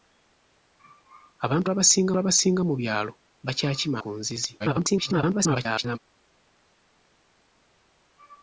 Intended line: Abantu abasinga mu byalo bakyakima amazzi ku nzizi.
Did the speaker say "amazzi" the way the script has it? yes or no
no